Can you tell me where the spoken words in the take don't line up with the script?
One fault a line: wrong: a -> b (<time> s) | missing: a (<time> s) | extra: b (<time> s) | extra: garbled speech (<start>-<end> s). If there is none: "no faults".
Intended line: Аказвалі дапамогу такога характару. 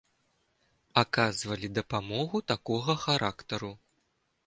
no faults